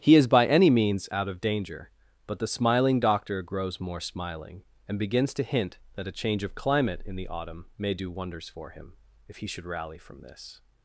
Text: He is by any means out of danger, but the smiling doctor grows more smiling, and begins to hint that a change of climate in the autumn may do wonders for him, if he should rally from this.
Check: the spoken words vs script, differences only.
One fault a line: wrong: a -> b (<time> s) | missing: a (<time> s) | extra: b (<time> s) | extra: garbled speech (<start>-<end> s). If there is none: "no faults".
no faults